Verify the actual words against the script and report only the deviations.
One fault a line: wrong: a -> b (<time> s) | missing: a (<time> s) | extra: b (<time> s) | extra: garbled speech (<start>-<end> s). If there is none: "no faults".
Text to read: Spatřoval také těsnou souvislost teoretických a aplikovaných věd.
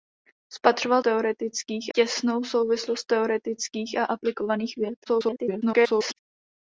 wrong: také -> teoretických (1.0 s)
extra: garbled speech (5.1-6.2 s)